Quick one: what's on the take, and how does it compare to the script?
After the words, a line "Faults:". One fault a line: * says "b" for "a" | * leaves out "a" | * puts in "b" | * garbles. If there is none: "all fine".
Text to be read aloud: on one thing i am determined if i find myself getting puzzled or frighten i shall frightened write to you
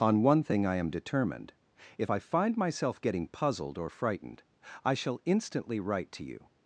on one thing i am determined if i find myself getting puzzled or frightened i shall instantly write to you
Faults:
* says "frightened" for "frighten"
* says "instantly" for "frightened"